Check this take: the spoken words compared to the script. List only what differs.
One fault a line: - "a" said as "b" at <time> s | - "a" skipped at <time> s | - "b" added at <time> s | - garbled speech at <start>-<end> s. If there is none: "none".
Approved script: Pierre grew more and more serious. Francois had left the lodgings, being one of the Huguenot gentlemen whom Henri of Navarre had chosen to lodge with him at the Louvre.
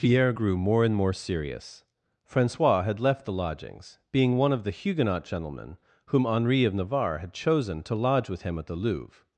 none